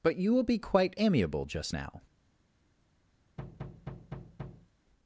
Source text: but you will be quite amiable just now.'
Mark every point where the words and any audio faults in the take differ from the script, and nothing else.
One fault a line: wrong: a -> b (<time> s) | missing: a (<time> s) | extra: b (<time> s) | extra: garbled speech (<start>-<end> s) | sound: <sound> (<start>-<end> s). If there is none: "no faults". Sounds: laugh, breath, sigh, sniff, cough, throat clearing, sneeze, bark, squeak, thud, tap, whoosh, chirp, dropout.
sound: thud (3.4-4.7 s)